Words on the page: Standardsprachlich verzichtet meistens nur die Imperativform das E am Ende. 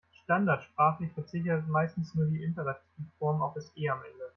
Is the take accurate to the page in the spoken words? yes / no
no